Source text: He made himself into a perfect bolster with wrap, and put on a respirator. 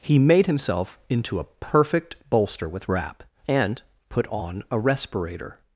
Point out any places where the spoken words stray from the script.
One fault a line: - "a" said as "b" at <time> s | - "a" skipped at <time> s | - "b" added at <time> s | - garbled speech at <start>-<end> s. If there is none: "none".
none